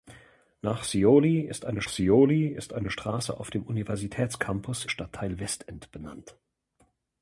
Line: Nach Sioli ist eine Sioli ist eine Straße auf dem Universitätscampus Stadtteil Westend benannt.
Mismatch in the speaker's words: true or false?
false